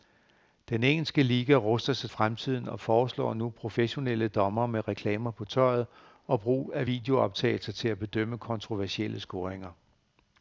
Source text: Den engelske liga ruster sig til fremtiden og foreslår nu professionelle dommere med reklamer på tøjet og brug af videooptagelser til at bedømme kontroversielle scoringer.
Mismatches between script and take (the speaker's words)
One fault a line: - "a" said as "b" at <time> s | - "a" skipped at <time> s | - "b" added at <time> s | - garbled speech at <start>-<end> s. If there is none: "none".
- "til" skipped at 2.1 s